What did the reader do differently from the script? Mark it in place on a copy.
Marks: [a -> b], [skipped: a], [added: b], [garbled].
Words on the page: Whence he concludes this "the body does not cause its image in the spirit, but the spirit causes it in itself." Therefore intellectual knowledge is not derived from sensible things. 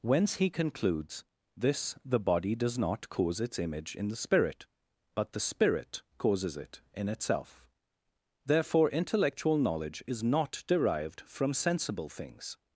Whence he concludes this "the body does not cause its image in the spirit, but the spirit causes it in itself." Therefore intellectual knowledge is not derived from sensible things.